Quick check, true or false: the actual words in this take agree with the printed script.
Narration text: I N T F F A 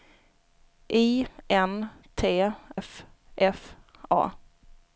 true